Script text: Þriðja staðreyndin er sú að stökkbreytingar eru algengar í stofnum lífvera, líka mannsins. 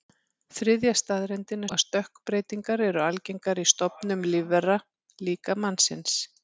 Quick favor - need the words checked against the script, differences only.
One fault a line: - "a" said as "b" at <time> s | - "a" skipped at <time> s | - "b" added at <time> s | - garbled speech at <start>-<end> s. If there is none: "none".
- "sú" skipped at 1.7 s